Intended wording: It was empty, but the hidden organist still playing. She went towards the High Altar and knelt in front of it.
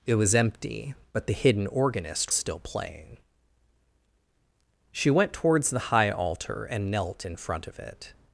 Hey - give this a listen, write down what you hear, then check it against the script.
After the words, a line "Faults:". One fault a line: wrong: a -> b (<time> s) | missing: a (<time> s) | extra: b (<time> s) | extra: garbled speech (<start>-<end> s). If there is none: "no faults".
It was empty, but the hidden organist still playing. She went towards the High Altar and knelt in front of it.
Faults:
no faults